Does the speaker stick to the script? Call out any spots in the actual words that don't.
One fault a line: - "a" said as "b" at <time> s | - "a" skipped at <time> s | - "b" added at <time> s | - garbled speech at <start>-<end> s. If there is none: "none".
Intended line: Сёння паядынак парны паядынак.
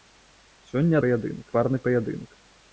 none